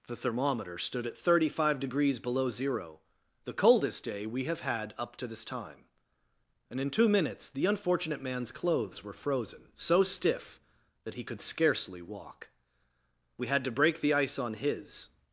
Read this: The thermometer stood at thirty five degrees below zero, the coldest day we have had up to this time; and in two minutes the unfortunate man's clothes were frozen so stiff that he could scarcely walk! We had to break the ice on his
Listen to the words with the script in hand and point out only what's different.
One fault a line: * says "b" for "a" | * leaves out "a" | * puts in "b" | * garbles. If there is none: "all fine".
all fine